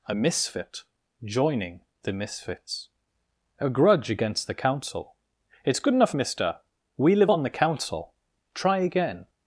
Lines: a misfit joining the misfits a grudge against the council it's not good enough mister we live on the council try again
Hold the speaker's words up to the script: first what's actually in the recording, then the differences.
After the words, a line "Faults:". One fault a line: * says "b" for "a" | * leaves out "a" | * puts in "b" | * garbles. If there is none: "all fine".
a misfit joining the misfits a grudge against the council it's good enough mister we live on the council try again
Faults:
* leaves out "not"